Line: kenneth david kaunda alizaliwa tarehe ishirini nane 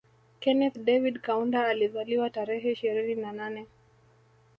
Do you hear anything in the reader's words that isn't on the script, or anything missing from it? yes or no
yes